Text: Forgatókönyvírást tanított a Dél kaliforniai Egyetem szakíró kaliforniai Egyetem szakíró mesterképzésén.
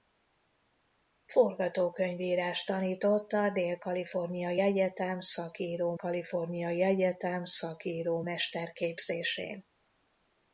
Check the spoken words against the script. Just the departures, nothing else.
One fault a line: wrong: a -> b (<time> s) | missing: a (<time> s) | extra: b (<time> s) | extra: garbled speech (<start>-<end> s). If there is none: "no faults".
no faults